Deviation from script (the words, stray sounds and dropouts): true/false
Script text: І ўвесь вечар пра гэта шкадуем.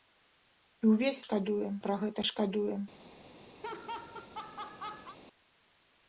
true